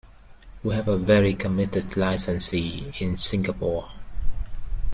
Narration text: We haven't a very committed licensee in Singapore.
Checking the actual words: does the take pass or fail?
fail